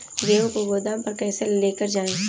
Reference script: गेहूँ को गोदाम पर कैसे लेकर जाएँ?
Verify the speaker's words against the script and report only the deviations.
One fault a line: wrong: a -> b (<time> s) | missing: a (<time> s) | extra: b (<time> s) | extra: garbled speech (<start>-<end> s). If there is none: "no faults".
no faults